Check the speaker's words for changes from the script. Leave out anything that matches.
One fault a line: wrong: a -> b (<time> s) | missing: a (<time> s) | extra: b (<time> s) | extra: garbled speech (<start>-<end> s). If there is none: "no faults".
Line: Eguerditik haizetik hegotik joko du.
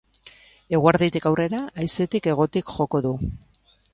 extra: aurrera (1.3 s)